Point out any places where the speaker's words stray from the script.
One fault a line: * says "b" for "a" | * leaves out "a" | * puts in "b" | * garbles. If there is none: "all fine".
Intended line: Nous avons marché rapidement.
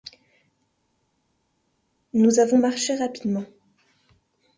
all fine